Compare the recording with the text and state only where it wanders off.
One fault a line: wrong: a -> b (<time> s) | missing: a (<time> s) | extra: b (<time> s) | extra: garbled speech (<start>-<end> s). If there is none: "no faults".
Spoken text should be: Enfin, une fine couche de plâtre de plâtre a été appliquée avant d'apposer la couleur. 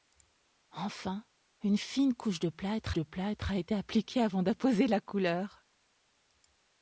no faults